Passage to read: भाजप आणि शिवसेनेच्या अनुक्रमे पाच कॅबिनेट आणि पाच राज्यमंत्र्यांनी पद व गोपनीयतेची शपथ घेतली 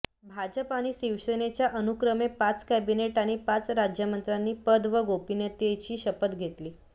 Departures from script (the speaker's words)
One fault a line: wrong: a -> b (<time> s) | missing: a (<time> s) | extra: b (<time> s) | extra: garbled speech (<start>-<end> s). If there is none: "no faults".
no faults